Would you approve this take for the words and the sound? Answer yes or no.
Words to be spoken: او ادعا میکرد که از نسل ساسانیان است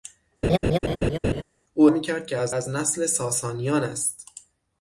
no